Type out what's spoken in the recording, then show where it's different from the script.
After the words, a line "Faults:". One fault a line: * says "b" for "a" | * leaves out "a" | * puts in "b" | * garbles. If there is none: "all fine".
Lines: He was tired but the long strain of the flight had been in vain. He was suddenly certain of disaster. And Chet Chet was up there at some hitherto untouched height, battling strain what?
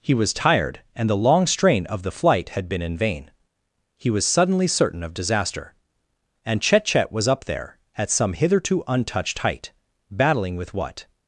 He was tired and the long strain of the flight had been in vain. He was suddenly certain of disaster. And Chet Chet was up there at some hitherto untouched height, battling with what?
Faults:
* says "and" for "but"
* says "with" for "strain"